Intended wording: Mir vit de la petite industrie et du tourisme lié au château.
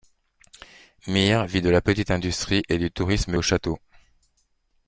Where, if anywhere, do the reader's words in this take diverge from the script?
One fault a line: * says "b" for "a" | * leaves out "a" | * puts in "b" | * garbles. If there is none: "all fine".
* leaves out "lié"